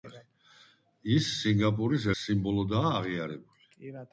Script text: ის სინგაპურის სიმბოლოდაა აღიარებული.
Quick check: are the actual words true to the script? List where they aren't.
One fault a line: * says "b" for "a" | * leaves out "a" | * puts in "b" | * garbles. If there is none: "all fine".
all fine